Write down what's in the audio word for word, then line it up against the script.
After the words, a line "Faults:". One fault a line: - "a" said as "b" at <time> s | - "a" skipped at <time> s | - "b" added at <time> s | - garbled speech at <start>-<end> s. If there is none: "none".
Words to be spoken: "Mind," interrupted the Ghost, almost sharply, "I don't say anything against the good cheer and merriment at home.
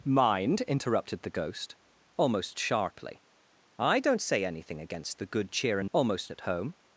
"Mind," interrupted the Ghost, almost sharply, "I don't say anything against the good cheer and almost at home.
Faults:
- "merriment" said as "almost" at 5.9 s